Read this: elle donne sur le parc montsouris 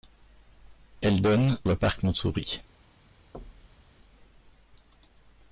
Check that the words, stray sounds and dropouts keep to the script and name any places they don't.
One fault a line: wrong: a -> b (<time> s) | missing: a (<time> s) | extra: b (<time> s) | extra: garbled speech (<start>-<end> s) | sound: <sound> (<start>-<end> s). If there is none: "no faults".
missing: sur (1.6 s)
sound: thud (3.3-3.9 s)